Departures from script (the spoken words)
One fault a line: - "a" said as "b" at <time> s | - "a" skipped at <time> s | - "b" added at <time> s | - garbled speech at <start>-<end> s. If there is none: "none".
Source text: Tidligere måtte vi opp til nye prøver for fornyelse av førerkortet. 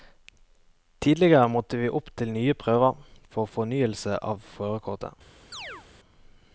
none